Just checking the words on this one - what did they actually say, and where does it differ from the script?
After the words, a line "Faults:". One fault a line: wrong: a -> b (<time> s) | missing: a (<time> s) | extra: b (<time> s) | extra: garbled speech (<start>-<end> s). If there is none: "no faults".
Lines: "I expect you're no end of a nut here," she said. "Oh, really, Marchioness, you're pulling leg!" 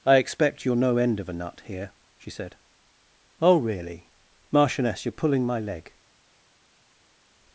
"I expect you're no end of a nut here," she said. "Oh, really, Marchioness, you're pulling my leg!"
Faults:
extra: my (5.5 s)